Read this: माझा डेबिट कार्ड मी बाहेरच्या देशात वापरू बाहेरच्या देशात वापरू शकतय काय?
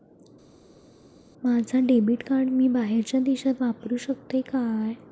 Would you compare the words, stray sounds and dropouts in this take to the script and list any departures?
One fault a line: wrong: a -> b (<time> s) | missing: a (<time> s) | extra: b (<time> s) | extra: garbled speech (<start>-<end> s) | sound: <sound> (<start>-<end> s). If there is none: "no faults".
missing: बाहेरच्या देशात वापरू (4.0 s)